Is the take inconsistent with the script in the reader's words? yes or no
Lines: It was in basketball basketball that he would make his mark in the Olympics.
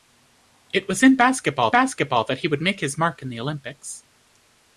no